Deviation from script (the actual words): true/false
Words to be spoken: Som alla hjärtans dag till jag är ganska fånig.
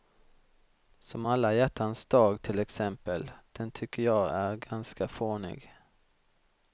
true